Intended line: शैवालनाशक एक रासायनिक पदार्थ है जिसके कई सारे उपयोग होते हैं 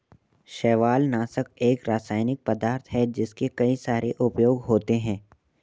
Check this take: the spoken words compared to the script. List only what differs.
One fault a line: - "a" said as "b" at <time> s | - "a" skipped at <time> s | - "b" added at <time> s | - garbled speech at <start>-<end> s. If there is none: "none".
none